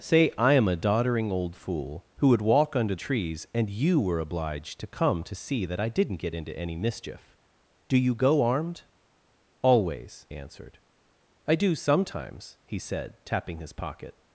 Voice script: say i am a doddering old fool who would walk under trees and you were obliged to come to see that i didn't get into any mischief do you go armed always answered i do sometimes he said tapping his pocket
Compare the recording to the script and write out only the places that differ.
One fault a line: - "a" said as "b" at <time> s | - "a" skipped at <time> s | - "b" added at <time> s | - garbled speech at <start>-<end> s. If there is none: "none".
none